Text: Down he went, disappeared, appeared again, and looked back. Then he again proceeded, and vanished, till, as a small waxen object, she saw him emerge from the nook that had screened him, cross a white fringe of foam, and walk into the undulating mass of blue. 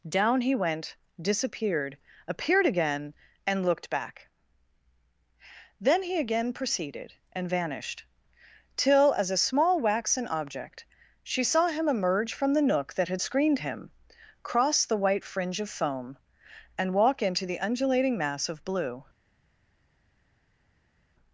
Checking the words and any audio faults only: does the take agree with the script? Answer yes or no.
no